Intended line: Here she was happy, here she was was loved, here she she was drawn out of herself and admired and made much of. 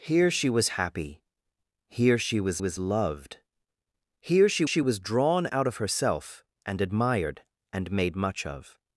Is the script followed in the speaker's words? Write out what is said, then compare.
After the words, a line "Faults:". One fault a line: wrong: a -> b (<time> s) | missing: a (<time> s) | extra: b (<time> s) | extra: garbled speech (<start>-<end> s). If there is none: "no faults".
Here she was happy, here she was was loved, here she she was drawn out of herself and admired and made much of.
Faults:
no faults